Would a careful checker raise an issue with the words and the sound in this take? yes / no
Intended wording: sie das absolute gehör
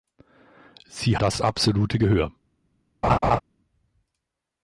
yes